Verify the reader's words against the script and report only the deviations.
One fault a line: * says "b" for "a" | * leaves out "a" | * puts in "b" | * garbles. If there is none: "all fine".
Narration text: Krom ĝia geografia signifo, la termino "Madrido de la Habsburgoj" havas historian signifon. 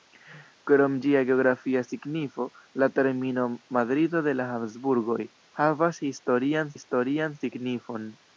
* puts in "historian"